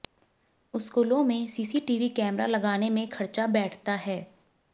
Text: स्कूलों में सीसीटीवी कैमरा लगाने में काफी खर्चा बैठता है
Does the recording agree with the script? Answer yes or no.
no